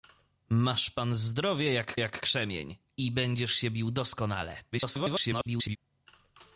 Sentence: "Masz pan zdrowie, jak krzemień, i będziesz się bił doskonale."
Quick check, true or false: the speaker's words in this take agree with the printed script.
false